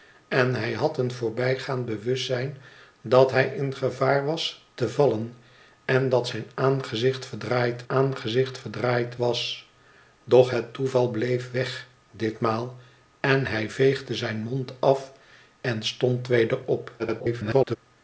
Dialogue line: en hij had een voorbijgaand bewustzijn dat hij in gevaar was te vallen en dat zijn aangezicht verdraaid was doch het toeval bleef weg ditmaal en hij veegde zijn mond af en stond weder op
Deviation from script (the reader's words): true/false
true